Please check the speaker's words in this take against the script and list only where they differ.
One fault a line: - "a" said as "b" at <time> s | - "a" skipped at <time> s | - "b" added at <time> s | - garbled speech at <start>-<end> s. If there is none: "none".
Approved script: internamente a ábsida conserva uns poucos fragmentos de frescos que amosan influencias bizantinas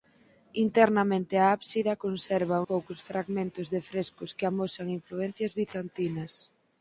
- "uns" skipped at 2.6 s